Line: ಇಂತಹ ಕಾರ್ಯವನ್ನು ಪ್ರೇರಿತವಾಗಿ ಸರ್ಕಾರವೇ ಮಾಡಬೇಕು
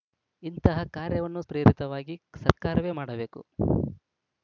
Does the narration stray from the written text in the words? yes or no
no